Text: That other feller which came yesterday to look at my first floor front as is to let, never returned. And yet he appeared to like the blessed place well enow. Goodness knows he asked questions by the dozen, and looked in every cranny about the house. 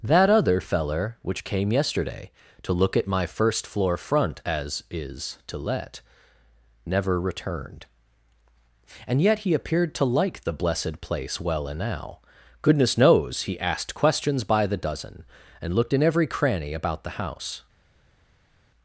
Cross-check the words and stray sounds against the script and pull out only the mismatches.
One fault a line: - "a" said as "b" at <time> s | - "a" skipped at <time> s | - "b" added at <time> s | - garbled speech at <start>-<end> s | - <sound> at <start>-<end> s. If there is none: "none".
none